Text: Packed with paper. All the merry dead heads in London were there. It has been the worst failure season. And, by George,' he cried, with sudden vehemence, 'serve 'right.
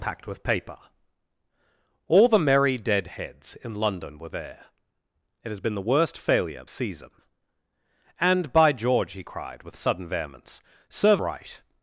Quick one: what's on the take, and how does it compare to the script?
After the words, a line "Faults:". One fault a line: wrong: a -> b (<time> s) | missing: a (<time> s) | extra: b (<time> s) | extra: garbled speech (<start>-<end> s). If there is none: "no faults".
Packed with paper. All the merry dead heads in London were there. It has been the worst failure season. And, by George,' he cried, with sudden vehemence, 'serve 'right.
Faults:
no faults